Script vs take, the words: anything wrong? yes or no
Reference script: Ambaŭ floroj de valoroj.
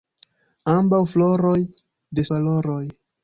no